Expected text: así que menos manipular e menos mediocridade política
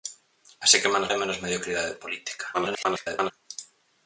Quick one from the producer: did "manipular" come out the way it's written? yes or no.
no